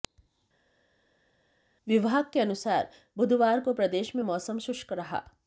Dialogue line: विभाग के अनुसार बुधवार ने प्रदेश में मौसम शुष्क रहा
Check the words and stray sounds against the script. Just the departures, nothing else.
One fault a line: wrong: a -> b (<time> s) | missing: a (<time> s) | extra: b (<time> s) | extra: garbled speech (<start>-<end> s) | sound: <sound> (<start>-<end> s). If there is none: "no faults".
wrong: ने -> को (3.6 s)